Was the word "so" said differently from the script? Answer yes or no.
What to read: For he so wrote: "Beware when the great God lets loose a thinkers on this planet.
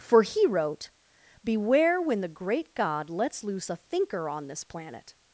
yes